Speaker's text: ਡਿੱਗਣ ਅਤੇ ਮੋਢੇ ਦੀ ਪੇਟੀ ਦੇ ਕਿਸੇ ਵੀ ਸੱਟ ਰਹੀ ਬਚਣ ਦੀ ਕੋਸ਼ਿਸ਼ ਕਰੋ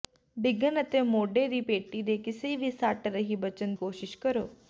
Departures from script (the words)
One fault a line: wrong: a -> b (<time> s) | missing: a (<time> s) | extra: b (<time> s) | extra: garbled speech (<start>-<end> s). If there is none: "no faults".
missing: ਦੀ (3.7 s)